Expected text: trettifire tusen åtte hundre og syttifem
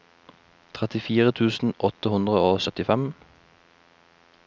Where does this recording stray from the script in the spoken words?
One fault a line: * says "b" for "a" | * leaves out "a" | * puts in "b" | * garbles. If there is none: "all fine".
all fine